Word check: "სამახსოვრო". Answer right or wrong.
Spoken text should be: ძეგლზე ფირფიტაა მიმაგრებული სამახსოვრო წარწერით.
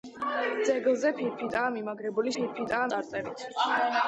wrong